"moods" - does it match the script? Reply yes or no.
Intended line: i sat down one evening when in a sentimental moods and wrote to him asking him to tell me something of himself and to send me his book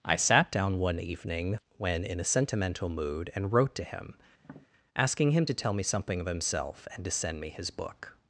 no